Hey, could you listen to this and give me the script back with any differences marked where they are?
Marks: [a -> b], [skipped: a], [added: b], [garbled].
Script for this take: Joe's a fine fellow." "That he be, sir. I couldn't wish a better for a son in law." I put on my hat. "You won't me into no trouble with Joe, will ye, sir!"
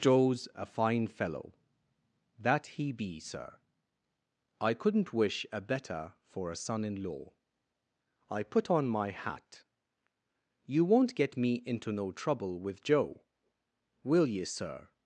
Joe's a fine fellow." "That he be, sir. I couldn't wish a better for a son in law." I put on my hat. "You won't [added: get] me into no trouble with Joe, will ye, sir!"